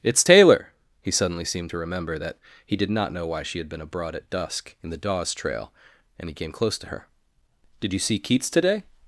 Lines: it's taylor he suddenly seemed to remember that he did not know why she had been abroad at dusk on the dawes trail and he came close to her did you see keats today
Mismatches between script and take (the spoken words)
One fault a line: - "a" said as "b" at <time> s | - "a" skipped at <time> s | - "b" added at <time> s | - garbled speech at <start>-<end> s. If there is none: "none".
- "on" said as "in" at 4.8 s